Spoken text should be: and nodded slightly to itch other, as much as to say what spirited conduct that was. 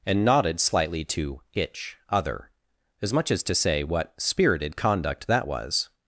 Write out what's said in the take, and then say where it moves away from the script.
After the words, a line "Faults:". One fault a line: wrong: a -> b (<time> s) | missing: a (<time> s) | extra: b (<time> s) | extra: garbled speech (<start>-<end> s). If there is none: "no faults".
and nodded slightly to itch other, as much as to say what spirited conduct that was.
Faults:
no faults